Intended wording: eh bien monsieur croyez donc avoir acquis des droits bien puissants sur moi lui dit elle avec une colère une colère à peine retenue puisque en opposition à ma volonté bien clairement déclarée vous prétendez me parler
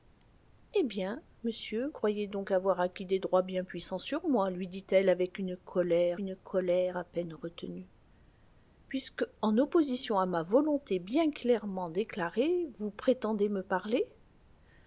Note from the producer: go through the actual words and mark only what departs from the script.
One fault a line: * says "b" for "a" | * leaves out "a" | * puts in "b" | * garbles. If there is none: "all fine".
all fine